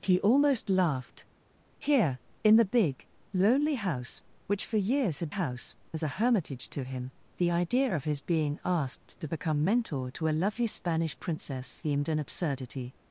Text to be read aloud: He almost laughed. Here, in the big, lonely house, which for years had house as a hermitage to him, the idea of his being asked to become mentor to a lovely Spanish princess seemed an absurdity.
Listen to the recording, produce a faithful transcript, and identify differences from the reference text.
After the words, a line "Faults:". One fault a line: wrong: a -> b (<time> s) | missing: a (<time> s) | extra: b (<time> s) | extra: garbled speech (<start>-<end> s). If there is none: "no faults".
He almost laughed. Here, in the big, lonely house, which for years had house as a hermitage to him, the idea of his being asked to become mentor to a lovely Spanish princess seemed an absurdity.
Faults:
no faults